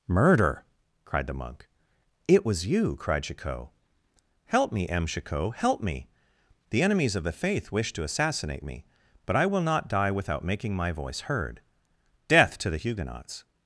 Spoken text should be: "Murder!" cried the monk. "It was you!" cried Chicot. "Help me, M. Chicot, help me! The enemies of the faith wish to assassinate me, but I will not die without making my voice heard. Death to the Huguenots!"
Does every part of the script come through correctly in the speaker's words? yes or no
yes